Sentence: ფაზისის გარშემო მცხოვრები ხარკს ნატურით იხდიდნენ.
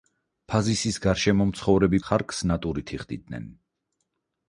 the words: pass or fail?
pass